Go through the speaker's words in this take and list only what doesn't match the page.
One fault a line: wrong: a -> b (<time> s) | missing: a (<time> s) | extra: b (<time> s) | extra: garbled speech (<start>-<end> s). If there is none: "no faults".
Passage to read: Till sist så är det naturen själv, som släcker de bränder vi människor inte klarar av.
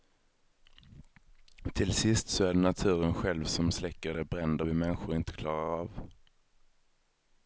no faults